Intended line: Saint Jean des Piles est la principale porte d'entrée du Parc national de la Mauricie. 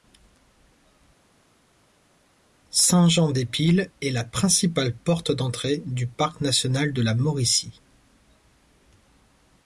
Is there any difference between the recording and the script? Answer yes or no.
no